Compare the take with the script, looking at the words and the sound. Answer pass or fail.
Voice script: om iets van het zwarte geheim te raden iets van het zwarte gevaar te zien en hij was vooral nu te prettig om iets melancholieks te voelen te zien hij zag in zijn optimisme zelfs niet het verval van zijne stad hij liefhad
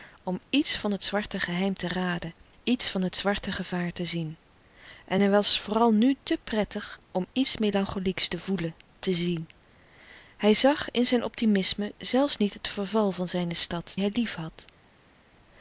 pass